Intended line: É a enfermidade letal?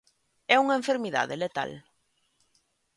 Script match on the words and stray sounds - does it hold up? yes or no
no